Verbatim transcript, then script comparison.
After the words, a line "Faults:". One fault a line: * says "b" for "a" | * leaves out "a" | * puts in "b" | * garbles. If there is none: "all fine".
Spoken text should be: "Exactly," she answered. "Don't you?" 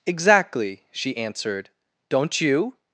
"Exactly," she answered. "Don't you?"
Faults:
all fine